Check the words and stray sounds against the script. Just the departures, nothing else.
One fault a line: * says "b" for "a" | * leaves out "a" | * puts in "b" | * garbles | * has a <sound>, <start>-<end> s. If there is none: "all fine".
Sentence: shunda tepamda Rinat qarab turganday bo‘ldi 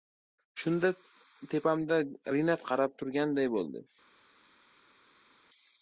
all fine